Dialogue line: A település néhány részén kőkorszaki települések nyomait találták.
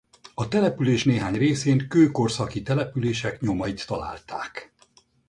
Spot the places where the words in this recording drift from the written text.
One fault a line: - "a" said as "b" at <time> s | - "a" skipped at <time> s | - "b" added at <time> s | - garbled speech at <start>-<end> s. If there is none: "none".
none